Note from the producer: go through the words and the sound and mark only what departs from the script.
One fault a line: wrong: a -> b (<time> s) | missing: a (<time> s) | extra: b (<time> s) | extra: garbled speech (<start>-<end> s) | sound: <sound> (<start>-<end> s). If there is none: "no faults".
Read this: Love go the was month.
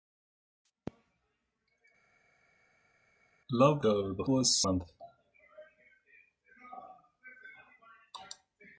no faults